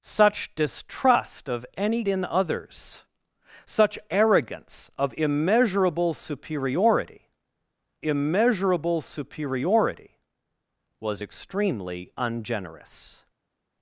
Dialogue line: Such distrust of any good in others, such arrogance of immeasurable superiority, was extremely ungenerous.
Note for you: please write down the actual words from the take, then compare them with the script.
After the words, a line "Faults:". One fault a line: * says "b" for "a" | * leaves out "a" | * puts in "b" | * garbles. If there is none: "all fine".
Such distrust of any in others, such arrogance of immeasurable superiority immeasurable superiority, was extremely ungenerous.
Faults:
* leaves out "good"
* puts in "immeasurable superiority"